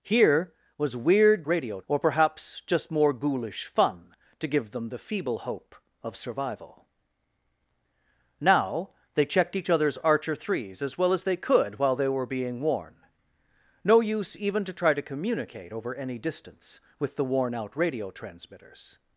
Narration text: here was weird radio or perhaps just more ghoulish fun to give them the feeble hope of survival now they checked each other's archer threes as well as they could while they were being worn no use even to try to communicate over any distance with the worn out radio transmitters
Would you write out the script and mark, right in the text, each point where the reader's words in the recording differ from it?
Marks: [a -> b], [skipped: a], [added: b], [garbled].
here was weird radio or perhaps just more ghoulish fun to give them the feeble hope of survival now they checked each other's archer threes as well as they could while they were being worn no use even to try to communicate over any distance with the worn out radio transmitters